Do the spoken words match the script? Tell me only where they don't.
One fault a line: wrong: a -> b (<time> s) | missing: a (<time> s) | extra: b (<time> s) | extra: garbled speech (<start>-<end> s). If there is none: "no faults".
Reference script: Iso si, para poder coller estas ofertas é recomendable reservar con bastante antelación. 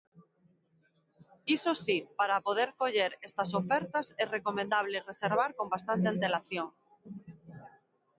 no faults